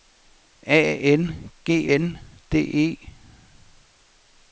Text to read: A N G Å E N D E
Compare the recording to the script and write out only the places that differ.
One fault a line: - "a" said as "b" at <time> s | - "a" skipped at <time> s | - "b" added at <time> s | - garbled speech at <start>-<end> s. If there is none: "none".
- "Å E" skipped at 1.9 s